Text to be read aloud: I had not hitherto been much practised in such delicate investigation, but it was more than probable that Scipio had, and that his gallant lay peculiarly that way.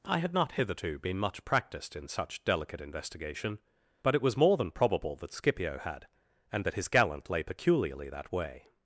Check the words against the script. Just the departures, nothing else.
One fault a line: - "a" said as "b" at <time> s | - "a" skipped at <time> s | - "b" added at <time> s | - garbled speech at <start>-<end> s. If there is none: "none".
none